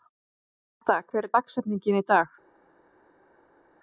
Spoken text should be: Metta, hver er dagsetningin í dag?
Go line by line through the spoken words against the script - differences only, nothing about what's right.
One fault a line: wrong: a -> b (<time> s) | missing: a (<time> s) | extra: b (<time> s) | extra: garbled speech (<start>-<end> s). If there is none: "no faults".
no faults